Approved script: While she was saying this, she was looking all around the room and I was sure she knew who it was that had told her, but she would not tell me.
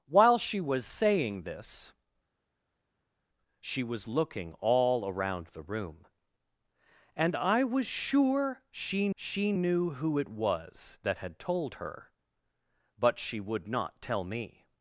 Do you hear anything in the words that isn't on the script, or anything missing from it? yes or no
yes